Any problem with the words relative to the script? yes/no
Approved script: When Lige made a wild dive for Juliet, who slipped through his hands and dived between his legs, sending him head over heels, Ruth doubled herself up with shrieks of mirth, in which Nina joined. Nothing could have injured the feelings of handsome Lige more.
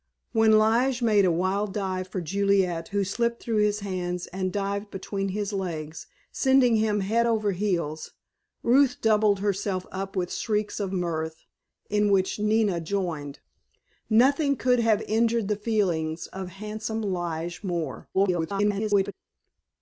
yes